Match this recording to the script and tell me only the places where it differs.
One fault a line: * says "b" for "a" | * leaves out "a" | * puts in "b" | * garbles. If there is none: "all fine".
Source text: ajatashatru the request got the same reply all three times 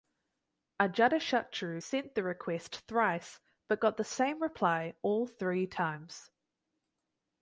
* puts in "sent"
* puts in "thrice but"